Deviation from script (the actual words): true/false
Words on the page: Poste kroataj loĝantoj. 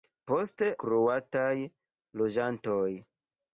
false